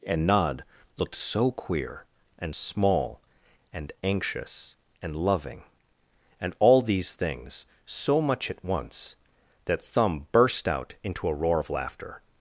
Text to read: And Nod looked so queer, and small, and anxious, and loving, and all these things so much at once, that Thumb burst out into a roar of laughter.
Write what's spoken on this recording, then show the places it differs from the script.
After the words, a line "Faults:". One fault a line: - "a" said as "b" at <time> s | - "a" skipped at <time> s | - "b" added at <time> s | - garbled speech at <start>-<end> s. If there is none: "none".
And Nod looked so queer, and small, and anxious, and loving, and all these things so much at once, that Thumb burst out into a roar of laughter.
Faults:
none